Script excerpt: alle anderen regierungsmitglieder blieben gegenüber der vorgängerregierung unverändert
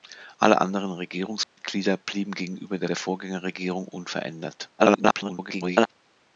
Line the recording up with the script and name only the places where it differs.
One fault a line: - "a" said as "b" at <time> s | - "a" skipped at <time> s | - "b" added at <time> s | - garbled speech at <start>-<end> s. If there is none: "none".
- "der" added at 2.9 s
- garbled speech at 4.8-5.9 s